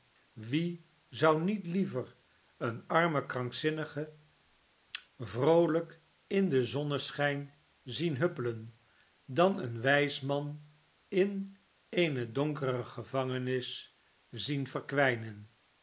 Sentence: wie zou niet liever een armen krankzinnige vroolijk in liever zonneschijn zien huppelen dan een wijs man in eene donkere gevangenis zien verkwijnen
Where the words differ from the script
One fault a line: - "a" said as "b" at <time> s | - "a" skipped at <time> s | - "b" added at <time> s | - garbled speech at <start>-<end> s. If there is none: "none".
- "liever" said as "den" at 6.5 s